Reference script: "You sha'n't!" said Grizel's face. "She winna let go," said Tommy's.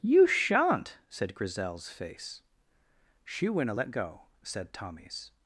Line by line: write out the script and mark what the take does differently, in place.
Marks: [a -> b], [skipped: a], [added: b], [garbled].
"You sha'n't!" said Grizel's face. "She winna let go," said Tommy's.